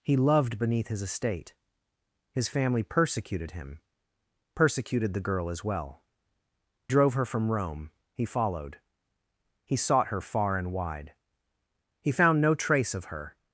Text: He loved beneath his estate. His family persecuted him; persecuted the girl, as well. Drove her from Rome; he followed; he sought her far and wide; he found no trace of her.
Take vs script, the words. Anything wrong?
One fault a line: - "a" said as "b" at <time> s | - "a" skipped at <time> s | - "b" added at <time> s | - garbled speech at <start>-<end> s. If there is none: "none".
none